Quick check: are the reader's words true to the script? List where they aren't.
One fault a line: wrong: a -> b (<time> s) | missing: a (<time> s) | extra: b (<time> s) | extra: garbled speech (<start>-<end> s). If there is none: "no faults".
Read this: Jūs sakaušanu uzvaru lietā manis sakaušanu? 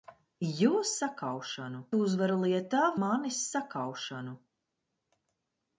no faults